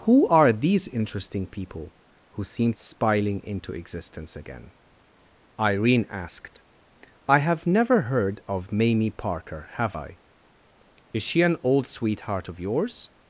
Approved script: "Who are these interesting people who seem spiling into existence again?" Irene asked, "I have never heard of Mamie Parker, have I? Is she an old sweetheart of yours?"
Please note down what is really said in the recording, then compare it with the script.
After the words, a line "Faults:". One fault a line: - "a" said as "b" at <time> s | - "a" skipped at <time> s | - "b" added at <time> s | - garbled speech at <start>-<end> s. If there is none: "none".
"Who are these interesting people who seem spiling into existence again?" Irene asked, "I have never heard of Mamie Parker, have I? Is she an old sweetheart of yours?"
Faults:
none